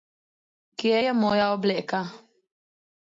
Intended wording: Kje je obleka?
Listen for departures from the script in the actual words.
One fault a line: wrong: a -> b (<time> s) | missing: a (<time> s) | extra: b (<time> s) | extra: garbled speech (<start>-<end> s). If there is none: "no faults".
extra: moja (1.1 s)